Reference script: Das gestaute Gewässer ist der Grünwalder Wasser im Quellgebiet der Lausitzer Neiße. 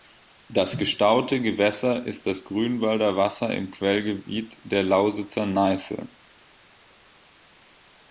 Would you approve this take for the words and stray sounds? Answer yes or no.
no